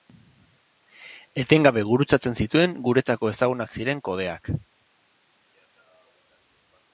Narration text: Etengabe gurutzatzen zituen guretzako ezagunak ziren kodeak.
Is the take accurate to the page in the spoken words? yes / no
yes